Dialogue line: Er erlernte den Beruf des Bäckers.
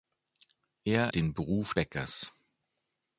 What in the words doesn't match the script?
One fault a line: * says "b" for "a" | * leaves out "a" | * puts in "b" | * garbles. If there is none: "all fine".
* leaves out "erlernte"
* leaves out "des"